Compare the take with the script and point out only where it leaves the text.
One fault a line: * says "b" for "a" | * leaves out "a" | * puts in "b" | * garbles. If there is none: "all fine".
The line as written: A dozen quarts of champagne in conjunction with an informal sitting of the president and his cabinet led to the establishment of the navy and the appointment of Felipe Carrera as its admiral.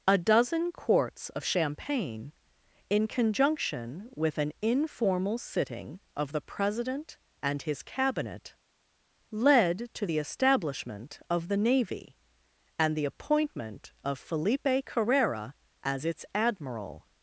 all fine